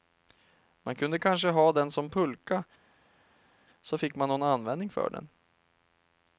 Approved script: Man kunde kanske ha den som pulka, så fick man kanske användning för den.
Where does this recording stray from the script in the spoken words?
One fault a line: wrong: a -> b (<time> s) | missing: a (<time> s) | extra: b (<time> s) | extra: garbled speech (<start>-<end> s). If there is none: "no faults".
wrong: kanske -> någon (4.3 s)